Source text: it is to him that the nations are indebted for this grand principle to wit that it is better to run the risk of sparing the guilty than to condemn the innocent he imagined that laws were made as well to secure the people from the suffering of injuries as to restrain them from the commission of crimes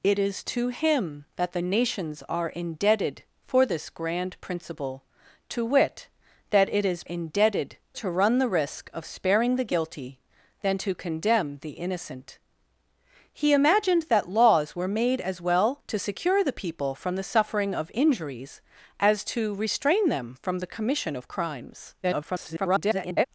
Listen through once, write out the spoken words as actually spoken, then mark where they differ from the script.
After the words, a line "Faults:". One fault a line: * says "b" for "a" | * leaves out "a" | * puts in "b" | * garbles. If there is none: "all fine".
it is to him that the nations are indebted for this grand principle to wit that it is indebted to run the risk of sparing the guilty than to condemn the innocent he imagined that laws were made as well to secure the people from the suffering of injuries as to restrain them from the commission of crimes [garbled]
Faults:
* says "indebted" for "better"
* garbles